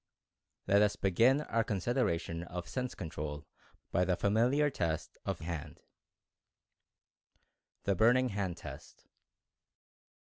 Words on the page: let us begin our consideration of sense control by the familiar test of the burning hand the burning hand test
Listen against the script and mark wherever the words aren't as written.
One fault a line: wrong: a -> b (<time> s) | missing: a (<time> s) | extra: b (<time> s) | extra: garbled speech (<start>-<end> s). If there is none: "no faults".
missing: the burning (5.4 s)